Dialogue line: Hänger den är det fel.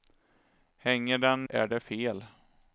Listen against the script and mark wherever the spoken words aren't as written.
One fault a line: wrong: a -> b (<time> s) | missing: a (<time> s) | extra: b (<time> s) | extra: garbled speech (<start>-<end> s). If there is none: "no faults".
no faults